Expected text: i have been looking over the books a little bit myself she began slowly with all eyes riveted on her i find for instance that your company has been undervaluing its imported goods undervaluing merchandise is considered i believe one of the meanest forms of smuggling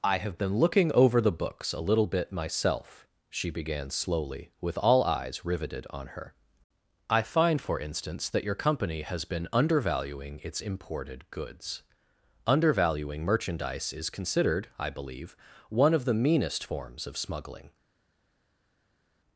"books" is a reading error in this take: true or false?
false